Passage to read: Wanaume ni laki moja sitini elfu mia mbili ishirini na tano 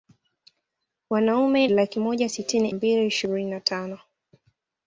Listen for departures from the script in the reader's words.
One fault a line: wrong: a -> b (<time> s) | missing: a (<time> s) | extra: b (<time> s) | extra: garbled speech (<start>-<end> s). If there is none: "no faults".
missing: ni (1.7 s)
missing: elfu mia (2.7 s)